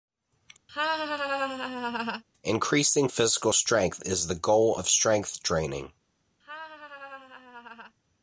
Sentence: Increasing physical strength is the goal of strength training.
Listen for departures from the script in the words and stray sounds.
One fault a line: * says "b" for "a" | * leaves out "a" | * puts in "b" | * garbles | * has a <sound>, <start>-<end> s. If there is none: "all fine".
* has a laugh, 0.7-2.2 s
* has a laugh, 6.4-7.9 s